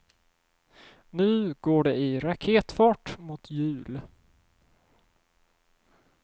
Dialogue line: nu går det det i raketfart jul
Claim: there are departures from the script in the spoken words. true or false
true